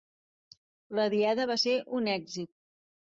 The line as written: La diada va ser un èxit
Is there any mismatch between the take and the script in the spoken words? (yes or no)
no